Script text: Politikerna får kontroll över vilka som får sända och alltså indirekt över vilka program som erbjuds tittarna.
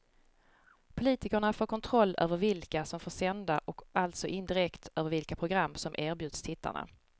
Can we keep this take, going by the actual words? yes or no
yes